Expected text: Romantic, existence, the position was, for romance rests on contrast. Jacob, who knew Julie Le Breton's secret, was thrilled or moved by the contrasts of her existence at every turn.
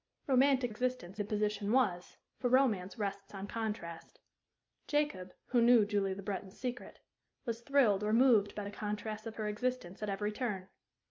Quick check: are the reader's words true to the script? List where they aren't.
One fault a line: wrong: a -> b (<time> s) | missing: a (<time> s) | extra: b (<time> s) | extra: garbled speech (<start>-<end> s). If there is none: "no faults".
no faults